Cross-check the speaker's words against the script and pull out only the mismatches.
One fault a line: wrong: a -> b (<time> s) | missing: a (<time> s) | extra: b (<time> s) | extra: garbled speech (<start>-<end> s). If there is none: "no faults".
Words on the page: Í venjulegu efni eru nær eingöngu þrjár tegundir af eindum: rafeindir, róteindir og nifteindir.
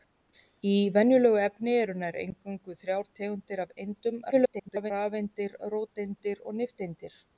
extra: garbled speech (4.3-4.9 s)